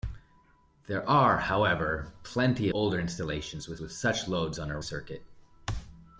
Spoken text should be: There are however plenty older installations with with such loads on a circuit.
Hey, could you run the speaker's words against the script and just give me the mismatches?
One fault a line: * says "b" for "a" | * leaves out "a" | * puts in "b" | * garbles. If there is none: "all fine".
all fine